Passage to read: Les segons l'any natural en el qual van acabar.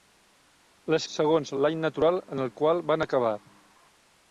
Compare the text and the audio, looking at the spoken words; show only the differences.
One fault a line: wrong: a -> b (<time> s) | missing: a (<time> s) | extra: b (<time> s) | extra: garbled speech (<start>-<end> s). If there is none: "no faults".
no faults